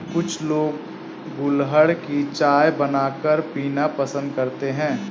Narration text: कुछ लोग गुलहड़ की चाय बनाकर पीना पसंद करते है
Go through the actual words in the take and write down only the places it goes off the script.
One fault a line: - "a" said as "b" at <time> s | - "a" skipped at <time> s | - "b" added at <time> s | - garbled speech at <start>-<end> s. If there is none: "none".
none